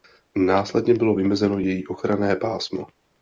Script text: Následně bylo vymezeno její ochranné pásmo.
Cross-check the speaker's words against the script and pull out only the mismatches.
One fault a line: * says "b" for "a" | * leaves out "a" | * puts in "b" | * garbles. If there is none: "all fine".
all fine